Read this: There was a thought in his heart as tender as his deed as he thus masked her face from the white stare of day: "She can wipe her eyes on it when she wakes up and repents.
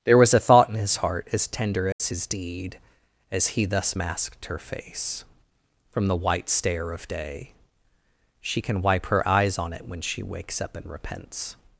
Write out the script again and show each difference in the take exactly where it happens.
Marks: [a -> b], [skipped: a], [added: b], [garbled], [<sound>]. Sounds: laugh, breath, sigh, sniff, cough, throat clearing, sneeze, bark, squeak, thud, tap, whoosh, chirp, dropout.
There was a thought in his heart as tender as [dropout] his deed as he thus masked her face from the white stare of day: "She can wipe her eyes on it when she wakes up and repents.